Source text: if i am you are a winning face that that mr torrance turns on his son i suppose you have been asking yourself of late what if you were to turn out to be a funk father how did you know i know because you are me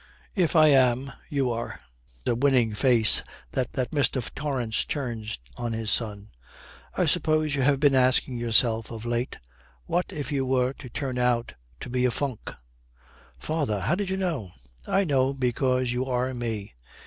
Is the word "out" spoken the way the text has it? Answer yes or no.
yes